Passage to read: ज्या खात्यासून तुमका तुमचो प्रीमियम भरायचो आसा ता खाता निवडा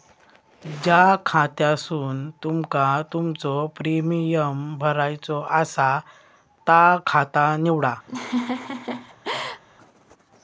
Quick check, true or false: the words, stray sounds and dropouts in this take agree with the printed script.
false